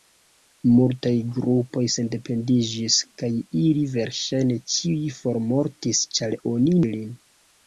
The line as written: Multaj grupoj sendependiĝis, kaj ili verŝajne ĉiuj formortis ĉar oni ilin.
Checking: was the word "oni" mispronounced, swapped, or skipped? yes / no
no